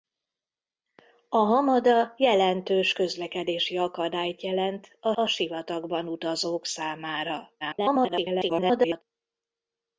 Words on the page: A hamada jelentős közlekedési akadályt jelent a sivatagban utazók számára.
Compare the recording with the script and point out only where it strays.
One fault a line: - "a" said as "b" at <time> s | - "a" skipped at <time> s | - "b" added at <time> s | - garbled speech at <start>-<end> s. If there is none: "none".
- "a" added at 5.1 s
- garbled speech at 7.6-9.0 s